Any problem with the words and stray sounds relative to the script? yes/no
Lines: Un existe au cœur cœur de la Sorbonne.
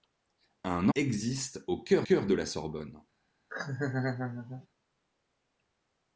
yes